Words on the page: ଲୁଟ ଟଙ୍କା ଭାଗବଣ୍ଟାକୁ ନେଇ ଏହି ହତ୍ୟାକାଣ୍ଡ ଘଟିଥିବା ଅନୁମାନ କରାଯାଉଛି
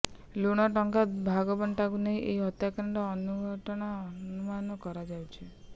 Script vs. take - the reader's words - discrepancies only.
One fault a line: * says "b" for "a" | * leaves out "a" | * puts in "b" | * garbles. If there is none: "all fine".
all fine